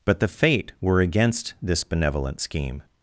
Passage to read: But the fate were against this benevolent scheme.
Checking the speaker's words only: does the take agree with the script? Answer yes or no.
yes